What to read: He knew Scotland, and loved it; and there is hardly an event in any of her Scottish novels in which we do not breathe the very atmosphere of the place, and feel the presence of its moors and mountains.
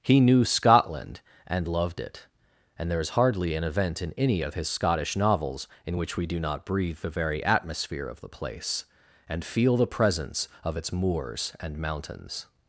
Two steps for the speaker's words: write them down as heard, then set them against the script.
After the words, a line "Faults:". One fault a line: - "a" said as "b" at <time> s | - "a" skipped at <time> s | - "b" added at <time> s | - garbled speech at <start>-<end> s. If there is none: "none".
He knew Scotland, and loved it; and there is hardly an event in any of his Scottish novels in which we do not breathe the very atmosphere of the place, and feel the presence of its moors and mountains.
Faults:
- "her" said as "his" at 4.5 s